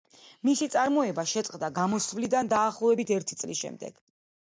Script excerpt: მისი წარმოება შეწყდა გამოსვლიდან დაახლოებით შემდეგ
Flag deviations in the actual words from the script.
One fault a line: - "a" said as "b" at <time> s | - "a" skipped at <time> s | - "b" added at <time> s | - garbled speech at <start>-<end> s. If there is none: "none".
- "ერთი წლის" added at 3.2 s